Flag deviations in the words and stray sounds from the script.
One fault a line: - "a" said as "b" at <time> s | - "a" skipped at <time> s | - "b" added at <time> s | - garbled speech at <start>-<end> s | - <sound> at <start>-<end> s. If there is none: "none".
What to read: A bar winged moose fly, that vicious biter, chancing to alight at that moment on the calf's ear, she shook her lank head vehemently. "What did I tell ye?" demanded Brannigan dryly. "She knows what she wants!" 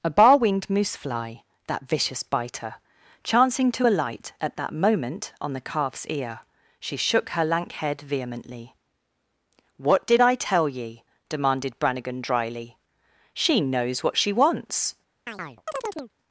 - chirp at 15.3-16.1 s